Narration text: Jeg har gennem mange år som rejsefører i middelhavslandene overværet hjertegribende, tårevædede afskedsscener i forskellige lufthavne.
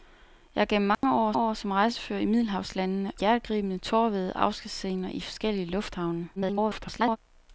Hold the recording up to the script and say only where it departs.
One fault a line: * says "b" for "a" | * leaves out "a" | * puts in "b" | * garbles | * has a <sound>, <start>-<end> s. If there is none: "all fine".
* has a dropout, 0.9-1.0 s
* puts in "år"
* leaves out "overværet"
* garbles